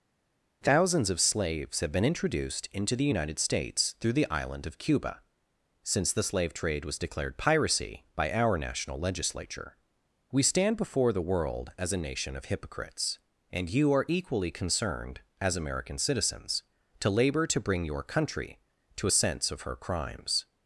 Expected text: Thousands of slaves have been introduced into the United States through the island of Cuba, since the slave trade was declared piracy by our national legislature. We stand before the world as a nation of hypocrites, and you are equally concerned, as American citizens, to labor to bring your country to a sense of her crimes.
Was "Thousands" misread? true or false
false